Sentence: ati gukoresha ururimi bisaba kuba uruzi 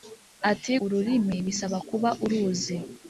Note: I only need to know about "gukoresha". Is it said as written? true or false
false